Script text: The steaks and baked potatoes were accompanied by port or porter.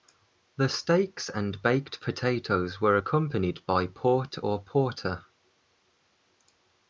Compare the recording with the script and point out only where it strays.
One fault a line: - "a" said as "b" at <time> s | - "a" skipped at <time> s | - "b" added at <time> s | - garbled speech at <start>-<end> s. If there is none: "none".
none